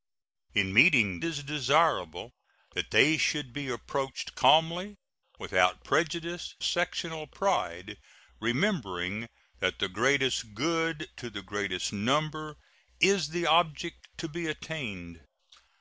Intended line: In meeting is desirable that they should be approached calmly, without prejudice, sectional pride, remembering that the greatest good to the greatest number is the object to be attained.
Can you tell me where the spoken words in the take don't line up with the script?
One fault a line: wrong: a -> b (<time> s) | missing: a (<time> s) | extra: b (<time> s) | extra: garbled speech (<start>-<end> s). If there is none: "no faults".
no faults